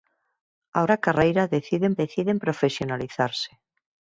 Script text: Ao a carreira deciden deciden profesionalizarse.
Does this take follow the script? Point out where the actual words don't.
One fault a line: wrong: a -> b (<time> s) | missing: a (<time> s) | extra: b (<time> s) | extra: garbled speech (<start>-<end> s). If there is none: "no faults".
no faults